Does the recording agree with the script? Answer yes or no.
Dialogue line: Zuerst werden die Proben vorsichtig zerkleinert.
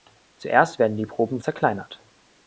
no